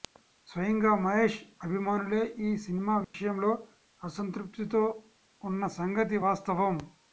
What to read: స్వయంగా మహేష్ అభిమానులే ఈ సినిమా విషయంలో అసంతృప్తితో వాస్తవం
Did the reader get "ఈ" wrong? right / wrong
right